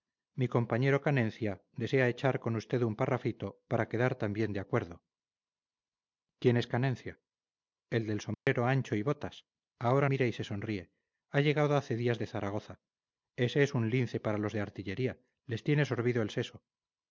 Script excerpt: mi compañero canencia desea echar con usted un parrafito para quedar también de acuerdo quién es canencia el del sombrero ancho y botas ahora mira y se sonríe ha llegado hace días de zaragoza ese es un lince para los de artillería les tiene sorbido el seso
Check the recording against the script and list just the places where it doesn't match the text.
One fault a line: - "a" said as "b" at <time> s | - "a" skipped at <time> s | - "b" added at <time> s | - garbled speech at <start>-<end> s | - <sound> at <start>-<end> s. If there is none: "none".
- dropout at 8.3-8.5 s